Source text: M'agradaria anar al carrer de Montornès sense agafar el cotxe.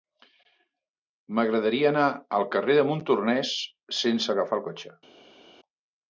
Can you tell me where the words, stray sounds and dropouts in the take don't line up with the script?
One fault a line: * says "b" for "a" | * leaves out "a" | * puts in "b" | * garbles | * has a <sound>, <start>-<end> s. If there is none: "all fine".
all fine